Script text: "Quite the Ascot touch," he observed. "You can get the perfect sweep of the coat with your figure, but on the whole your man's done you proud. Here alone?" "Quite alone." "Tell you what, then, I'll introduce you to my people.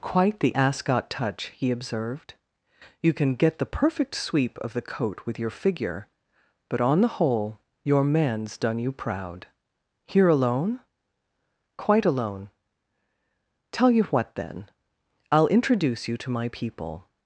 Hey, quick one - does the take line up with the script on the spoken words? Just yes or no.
yes